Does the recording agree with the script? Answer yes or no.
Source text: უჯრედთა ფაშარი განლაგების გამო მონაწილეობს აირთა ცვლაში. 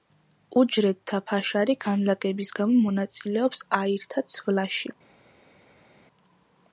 yes